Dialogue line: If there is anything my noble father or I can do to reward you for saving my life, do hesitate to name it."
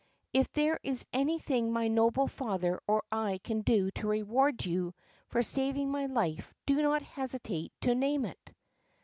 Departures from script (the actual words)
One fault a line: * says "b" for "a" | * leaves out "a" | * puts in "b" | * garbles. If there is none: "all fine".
* puts in "not"